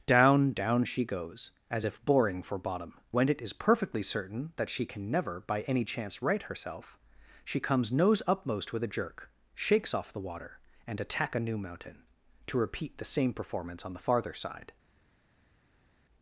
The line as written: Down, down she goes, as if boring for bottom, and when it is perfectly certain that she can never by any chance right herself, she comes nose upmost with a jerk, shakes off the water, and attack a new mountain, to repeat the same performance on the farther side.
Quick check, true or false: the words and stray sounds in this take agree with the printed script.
false